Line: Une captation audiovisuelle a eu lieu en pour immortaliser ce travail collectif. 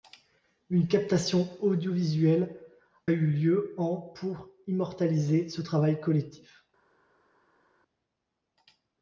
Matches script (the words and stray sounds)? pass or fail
fail